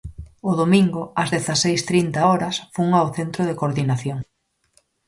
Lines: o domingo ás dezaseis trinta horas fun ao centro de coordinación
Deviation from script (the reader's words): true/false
false